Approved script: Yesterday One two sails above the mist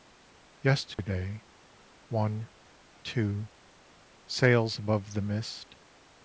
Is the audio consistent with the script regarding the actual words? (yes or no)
yes